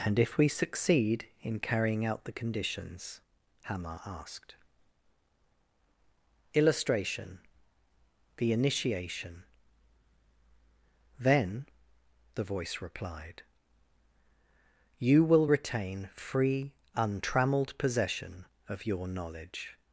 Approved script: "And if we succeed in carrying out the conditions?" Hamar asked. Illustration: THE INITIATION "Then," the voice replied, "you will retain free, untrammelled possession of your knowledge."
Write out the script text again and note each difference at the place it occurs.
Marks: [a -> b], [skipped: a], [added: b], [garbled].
"And if we succeed in carrying out the conditions?" Hamar asked. Illustration: THE INITIATION "Then," the voice replied, "you will retain free, untrammelled possession of your knowledge."